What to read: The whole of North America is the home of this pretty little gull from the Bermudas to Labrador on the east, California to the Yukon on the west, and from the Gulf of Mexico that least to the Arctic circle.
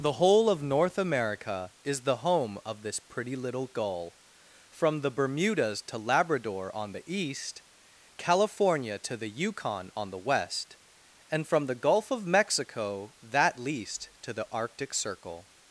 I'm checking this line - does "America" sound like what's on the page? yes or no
yes